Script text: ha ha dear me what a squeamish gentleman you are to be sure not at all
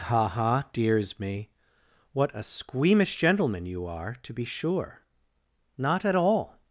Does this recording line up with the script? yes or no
no